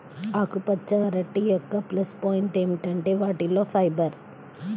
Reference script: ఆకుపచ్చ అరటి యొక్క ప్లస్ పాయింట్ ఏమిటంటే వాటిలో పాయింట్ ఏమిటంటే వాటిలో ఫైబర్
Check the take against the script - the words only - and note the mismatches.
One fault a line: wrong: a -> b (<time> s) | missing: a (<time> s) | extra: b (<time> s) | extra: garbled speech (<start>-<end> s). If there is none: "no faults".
missing: పాయింట్ ఏమిటంటే వాటిలో (3.6 s)